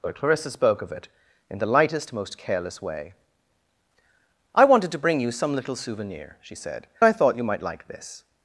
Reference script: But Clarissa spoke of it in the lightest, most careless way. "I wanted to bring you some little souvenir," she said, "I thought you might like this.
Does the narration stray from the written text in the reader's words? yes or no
no